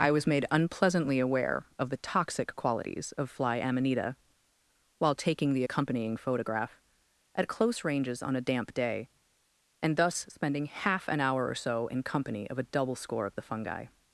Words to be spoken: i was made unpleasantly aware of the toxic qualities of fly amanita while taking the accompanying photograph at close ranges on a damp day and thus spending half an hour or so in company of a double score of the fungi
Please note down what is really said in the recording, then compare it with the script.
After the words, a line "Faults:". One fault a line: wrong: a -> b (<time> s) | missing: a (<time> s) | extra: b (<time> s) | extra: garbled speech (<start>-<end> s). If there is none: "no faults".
i was made unpleasantly aware of the toxic qualities of fly amanita while taking the accompanying photograph at close ranges on a damp day and thus spending half an hour or so in company of a double score of the fungi
Faults:
no faults